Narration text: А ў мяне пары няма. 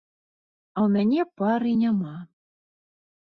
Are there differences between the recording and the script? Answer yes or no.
no